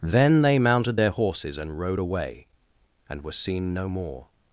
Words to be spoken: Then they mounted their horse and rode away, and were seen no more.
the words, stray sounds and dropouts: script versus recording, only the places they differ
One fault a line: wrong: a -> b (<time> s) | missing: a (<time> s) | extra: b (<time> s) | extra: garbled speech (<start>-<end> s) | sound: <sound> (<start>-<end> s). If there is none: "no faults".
wrong: horse -> horses (1.1 s)